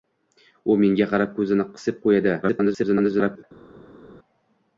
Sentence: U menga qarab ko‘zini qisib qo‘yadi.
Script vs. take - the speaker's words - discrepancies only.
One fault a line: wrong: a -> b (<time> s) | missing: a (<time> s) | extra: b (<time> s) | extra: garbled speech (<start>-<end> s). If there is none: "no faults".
extra: garbled speech (2.4-3.4 s)